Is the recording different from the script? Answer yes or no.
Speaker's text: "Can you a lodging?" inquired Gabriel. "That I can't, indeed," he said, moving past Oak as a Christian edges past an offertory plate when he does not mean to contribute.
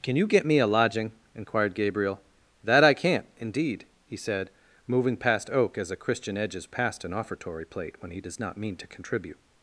yes